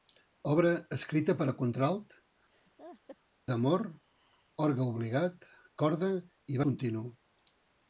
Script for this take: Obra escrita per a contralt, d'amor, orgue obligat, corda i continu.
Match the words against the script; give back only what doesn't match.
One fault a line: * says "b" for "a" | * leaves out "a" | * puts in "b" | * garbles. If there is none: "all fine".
all fine